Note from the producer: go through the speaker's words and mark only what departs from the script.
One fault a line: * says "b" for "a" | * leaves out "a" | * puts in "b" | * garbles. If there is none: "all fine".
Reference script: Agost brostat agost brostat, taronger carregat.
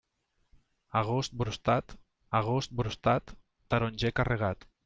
all fine